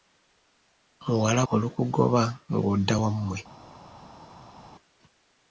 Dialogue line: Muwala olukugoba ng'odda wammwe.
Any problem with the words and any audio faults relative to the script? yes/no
no